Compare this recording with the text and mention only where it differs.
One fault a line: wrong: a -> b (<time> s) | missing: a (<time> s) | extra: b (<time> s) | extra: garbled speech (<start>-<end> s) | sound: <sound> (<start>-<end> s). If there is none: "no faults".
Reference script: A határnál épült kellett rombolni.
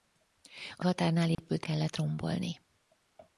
sound: dropout (1.3-1.4 s)